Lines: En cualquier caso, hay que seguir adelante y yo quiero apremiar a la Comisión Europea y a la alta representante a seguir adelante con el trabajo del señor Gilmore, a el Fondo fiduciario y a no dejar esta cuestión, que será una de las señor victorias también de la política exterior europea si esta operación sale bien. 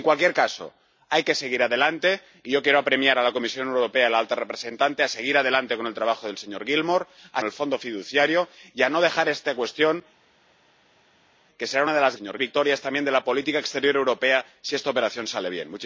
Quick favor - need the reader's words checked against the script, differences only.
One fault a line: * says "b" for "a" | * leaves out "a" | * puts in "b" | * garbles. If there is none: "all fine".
all fine